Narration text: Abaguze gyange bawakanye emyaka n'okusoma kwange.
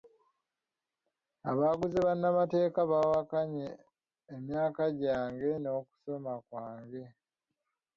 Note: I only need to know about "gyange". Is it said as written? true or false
false